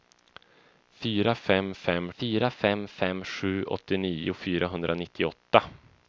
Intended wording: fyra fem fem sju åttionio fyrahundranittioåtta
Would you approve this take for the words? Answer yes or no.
no